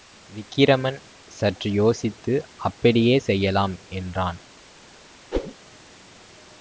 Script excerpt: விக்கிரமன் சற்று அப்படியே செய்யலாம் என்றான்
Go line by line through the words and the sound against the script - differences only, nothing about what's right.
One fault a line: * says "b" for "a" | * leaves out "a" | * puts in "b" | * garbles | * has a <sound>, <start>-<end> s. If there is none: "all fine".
* puts in "யோசித்து"
* has a whoosh, 5.3-5.5 s